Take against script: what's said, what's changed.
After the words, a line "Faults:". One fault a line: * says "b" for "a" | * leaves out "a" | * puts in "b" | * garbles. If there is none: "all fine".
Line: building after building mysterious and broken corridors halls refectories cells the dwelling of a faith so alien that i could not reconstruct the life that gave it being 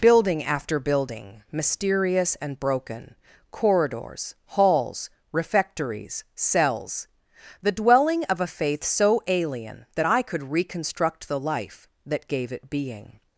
building after building mysterious and broken corridors halls refectories cells the dwelling of a faith so alien that i could reconstruct the life that gave it being
Faults:
* leaves out "not"